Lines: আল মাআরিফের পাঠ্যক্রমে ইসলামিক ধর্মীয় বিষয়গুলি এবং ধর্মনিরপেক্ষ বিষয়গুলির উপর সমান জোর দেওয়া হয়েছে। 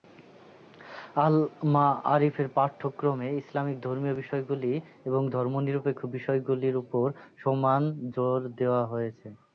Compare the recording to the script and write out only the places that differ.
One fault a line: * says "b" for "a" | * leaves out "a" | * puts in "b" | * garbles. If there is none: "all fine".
all fine